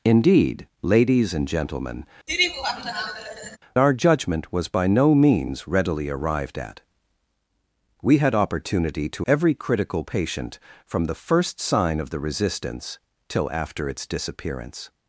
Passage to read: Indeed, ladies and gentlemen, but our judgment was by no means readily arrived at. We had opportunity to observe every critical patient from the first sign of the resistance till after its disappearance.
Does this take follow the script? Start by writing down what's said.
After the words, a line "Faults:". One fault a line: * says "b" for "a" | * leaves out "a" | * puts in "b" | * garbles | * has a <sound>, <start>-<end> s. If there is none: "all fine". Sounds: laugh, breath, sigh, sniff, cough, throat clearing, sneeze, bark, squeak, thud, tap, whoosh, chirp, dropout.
Indeed, ladies and gentlemen, our judgment was by no means readily arrived at. We had opportunity to every critical patient from the first sign of the resistance till after its disappearance.
Faults:
* leaves out "but"
* has a laugh, 2.3-3.6 s
* leaves out "observe"